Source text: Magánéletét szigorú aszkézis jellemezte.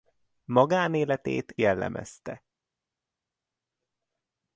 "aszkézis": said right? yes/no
no